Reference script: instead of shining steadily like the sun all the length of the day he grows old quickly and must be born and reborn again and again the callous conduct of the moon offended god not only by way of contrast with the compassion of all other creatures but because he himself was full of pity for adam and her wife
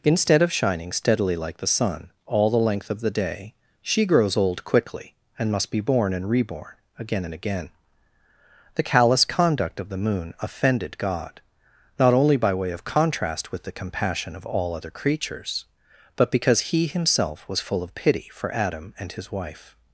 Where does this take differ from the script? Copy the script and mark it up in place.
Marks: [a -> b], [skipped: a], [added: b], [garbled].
instead of shining steadily like the sun all the length of the day [he -> she] grows old quickly and must be born and reborn again and again the callous conduct of the moon offended god not only by way of contrast with the compassion of all other creatures but because he himself was full of pity for adam and [her -> his] wife